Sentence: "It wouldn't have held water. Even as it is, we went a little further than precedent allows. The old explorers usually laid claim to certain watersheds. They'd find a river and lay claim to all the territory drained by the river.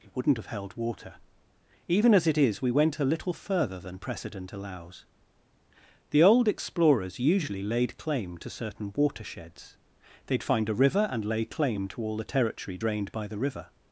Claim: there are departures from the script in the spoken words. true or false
false